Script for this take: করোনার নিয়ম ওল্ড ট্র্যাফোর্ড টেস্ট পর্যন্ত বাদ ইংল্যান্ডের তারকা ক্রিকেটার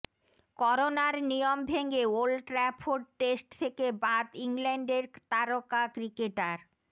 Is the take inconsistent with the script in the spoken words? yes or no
yes